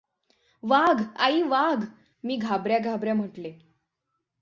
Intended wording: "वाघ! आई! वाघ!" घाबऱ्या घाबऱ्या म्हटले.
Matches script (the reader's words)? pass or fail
fail